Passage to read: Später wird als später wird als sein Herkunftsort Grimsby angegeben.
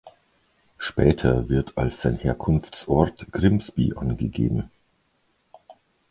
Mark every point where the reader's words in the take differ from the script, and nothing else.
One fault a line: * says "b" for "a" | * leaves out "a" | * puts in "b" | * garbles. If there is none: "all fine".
* leaves out "später wird als"